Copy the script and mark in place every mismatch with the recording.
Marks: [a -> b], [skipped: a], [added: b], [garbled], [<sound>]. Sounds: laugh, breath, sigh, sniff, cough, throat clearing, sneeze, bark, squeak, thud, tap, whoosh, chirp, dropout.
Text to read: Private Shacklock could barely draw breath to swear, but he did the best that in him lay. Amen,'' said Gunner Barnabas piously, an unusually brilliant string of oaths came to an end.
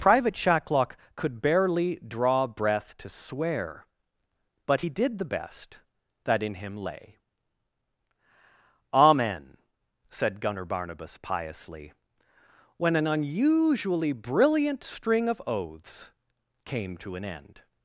Private Shacklock could barely draw breath to swear, but he did the best that in him lay. Amen,'' said Gunner Barnabas piously, [added: when] an unusually brilliant string of oaths came to an end.